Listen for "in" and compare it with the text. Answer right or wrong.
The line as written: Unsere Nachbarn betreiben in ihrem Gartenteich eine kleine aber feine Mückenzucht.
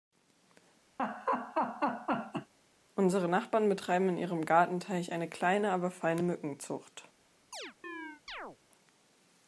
right